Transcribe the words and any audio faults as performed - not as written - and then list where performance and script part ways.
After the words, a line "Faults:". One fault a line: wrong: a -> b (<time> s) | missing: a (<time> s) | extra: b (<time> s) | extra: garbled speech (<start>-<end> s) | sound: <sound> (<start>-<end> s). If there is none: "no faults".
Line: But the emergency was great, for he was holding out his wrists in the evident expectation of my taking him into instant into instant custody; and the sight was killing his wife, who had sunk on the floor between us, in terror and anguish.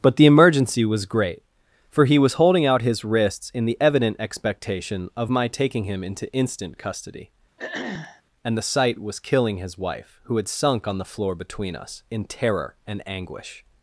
But the emergency was great, for he was holding out his wrists in the evident expectation of my taking him into instant custody; and the sight was killing his wife, who had sunk on the floor between us, in terror and anguish.
Faults:
missing: into instant (6.8 s)
sound: throat clearing (7.6-8.2 s)